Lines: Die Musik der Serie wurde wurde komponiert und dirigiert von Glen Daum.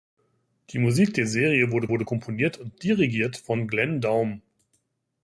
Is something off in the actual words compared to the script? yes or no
no